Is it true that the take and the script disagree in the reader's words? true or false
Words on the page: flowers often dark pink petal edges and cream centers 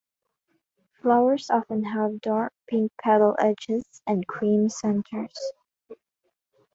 true